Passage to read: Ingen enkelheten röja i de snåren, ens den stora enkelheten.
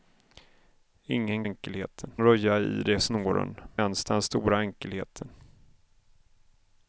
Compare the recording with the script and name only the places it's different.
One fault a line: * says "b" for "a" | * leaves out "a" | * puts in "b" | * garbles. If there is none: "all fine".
all fine